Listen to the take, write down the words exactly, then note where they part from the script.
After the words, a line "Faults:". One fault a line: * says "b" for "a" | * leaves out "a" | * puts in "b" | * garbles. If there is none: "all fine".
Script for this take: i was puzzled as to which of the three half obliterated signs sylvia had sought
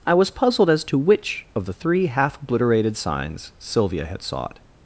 i was puzzled as to which of the three half obliterated signs sylvia had sought
Faults:
all fine